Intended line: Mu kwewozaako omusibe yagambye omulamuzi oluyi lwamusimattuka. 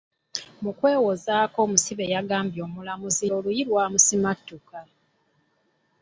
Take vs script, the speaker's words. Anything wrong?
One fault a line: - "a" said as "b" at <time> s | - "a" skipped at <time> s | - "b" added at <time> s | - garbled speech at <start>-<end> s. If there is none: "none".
none